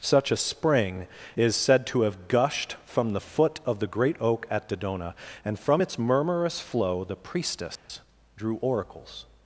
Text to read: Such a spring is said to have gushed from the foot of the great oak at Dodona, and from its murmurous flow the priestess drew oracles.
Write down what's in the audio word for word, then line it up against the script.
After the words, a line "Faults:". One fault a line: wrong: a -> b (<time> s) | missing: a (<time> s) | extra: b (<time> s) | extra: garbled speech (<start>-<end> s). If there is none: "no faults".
Such a spring is said to have gushed from the foot of the great oak at Dodona, and from its murmurous flow the priestess drew oracles.
Faults:
no faults